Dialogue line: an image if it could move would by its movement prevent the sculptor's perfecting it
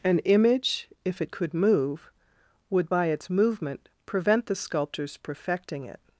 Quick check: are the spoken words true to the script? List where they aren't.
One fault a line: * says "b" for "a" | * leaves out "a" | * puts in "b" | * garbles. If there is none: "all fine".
all fine